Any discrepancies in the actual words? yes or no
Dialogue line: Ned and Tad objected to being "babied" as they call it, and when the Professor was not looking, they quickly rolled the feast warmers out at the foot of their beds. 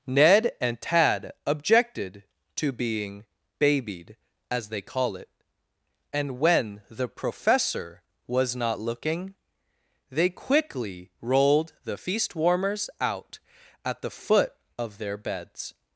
no